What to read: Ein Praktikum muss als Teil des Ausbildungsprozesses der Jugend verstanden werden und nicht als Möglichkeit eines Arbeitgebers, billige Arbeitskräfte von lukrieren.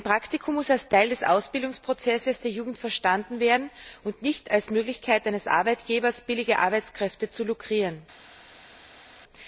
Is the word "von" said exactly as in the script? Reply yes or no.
no